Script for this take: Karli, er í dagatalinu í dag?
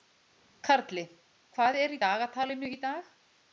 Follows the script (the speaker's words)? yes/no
no